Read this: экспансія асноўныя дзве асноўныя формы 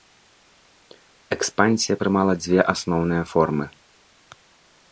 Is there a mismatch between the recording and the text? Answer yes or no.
yes